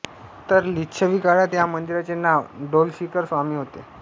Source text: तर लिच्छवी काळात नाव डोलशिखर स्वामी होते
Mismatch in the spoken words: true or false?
true